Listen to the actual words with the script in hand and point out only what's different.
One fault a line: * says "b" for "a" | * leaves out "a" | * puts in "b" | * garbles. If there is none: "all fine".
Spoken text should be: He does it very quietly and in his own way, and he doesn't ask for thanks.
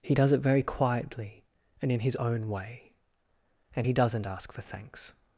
all fine